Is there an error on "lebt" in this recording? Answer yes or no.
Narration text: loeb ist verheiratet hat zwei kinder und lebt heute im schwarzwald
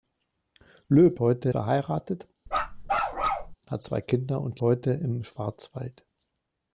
yes